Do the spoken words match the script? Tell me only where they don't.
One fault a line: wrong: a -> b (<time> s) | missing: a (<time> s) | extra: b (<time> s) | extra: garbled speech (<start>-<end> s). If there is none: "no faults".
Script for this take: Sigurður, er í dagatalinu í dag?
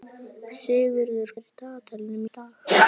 no faults